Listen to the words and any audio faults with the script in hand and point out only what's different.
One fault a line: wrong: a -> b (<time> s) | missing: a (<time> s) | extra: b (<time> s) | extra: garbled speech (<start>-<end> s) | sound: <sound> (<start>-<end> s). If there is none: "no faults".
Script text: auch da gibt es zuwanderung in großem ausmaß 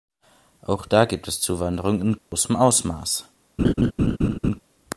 sound: dropout (2.2-2.3 s)
sound: laugh (3.6-4.6 s)